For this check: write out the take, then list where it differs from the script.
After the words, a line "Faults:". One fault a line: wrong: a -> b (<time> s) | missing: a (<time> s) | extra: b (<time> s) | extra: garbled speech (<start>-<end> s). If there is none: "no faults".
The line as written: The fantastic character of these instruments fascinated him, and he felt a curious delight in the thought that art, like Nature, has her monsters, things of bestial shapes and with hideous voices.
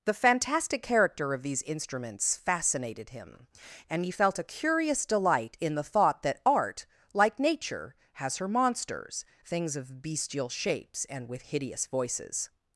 The fantastic character of these instruments fascinated him, and he felt a curious delight in the thought that art, like Nature, has her monsters, things of bestial shapes and with hideous voices.
Faults:
no faults